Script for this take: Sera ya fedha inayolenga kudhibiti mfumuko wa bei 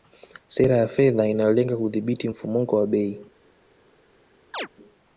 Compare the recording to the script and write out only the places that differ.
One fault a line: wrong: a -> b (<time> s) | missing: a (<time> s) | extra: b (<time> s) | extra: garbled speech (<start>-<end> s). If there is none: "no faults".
no faults